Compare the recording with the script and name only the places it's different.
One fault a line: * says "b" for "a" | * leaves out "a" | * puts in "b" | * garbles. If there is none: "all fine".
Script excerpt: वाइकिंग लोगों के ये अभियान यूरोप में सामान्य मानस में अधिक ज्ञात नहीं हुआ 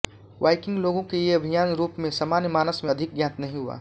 all fine